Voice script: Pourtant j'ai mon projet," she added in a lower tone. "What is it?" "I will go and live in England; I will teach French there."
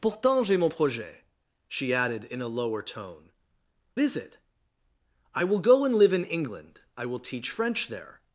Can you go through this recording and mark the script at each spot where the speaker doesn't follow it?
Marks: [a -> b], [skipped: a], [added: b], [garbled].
Pourtant j'ai mon projet," she added in a lower tone. [skipped: "What] is it?" "I will go and live in England; I will teach French there."